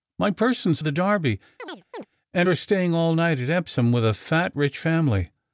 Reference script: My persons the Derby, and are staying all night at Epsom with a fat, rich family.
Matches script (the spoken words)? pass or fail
pass